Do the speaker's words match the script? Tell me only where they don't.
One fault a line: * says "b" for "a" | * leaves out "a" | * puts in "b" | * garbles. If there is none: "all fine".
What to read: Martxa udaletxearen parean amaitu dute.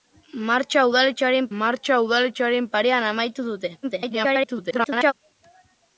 * puts in "martxa udaletxearen"
* garbles